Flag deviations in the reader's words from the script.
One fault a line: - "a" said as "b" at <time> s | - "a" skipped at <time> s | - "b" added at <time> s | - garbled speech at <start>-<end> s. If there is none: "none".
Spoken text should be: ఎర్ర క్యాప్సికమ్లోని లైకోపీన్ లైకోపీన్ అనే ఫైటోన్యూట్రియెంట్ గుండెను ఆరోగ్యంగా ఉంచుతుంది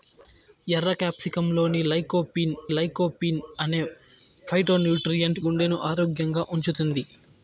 none